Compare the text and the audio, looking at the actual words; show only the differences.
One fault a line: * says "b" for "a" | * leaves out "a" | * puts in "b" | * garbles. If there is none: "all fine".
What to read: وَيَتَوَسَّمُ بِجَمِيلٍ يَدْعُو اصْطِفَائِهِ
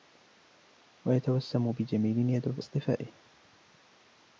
all fine